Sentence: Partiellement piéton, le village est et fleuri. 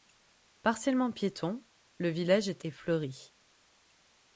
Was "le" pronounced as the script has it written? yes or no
yes